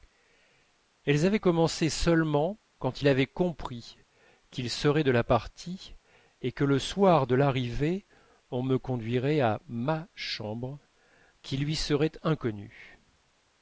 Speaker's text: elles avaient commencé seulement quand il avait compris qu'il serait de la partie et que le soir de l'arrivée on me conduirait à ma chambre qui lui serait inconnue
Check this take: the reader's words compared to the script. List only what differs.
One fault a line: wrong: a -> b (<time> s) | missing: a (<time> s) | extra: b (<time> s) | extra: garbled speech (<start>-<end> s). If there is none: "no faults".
no faults